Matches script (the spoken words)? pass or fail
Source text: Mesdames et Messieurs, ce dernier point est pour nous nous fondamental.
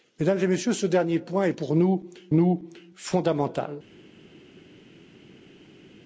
pass